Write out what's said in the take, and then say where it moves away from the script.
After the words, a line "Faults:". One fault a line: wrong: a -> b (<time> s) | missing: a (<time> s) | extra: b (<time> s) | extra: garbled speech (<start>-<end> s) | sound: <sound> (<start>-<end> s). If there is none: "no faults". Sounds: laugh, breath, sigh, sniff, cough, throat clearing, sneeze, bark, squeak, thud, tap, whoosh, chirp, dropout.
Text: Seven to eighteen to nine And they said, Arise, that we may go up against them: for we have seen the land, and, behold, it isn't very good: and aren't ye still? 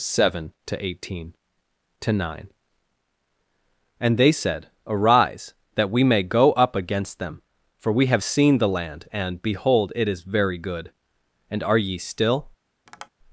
Seven to eighteen to nine And they said, Arise, that we may go up against them: for we have seen the land, and, behold, it is very good: and are ye still?
Faults:
wrong: isn't -> is (10.1 s)
wrong: aren't -> are (11.6 s)
sound: tap (12.9-13.1 s)